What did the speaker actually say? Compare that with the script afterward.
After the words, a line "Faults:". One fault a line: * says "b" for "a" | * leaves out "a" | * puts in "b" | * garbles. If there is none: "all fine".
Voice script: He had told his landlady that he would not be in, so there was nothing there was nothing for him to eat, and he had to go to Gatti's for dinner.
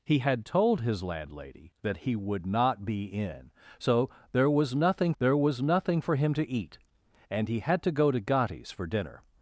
He had told his landlady that he would not be in, so there was nothing there was nothing for him to eat, and he had to go to Gatti's for dinner.
Faults:
all fine